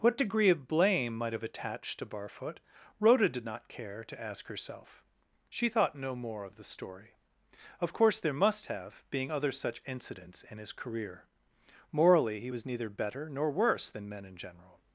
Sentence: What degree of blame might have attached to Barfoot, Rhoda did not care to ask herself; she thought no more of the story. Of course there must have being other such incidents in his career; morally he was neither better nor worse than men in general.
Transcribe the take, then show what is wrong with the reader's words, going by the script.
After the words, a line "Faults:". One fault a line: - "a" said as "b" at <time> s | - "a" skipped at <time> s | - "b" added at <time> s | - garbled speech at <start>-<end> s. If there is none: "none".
What degree of blame might have attached to Barfoot, Rhoda did not care to ask herself; she thought no more of the story. Of course there must have being other such incidents in his career; morally he was neither better nor worse than men in general.
Faults:
none